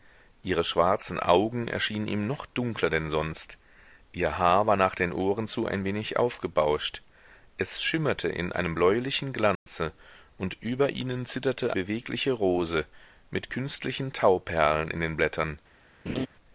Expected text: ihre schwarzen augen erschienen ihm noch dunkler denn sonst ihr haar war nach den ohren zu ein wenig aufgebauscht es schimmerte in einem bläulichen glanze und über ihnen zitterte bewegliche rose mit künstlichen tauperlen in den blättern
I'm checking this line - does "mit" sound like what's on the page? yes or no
yes